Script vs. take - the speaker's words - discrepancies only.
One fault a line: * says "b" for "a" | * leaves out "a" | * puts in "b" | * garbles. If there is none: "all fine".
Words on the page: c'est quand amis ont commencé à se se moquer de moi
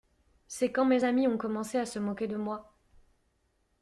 * puts in "mes"
* leaves out "se"